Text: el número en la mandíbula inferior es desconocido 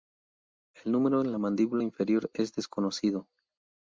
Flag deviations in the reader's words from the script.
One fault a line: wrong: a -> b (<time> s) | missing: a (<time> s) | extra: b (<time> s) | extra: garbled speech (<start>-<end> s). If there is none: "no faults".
no faults